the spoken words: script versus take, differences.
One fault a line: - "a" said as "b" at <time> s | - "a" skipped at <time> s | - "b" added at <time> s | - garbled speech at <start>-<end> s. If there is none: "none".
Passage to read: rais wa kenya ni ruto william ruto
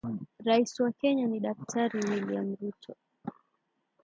- "ruto" said as "daktari" at 1.4 s